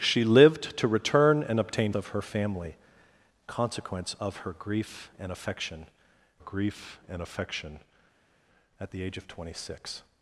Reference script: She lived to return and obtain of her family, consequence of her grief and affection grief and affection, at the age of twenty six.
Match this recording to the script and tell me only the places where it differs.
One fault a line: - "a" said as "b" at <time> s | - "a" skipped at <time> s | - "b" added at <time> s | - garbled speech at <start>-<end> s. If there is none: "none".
none